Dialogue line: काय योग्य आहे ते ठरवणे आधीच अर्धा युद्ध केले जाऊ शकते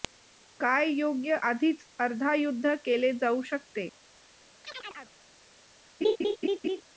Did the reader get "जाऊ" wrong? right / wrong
right